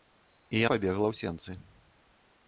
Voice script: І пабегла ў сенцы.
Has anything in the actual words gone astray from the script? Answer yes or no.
no